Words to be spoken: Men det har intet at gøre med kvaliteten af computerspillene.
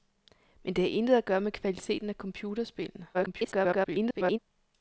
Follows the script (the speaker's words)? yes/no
no